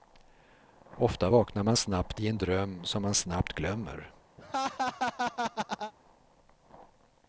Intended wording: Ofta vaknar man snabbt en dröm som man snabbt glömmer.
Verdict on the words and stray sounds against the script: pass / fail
fail